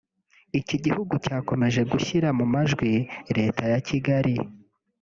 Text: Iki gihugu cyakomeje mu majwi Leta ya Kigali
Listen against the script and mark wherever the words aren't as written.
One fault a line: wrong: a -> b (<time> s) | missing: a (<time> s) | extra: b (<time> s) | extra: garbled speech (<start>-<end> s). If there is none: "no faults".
extra: gushyira (1.9 s)